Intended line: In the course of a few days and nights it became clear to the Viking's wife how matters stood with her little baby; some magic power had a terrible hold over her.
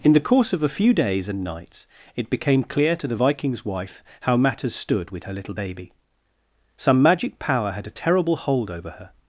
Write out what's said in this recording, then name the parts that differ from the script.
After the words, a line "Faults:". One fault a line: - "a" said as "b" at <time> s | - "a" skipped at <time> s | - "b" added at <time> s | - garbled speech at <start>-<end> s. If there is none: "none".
In the course of a few days and nights it became clear to the Viking's wife how matters stood with her little baby; some magic power had a terrible hold over her.
Faults:
none